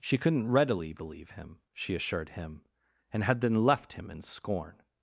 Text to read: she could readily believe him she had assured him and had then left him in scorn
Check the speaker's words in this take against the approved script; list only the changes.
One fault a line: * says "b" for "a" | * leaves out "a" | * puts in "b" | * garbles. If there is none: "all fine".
* says "couldn't" for "could"
* leaves out "had"